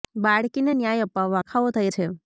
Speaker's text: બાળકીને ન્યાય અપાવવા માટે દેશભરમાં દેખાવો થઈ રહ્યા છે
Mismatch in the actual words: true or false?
true